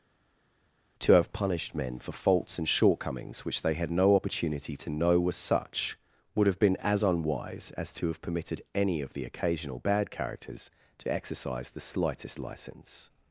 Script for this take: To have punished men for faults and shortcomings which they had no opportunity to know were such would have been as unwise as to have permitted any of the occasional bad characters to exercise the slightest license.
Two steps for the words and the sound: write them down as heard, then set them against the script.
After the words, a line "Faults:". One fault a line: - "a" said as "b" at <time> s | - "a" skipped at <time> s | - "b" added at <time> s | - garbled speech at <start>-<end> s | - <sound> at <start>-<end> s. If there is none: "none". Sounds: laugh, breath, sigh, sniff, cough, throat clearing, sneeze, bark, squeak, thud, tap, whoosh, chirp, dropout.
To have punished men for faults and shortcomings which they had no opportunity to know were such would have been as unwise as to have permitted any of the occasional bad characters to exercise the slightest license.
Faults:
none